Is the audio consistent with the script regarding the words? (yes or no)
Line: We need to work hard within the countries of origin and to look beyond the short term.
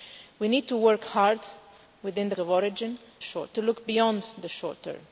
no